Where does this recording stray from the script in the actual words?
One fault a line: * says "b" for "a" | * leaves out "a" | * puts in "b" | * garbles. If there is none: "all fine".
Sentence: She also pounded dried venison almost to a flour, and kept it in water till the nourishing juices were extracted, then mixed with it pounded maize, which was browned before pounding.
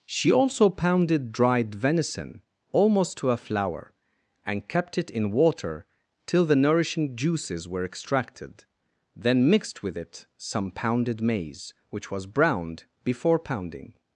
* puts in "some"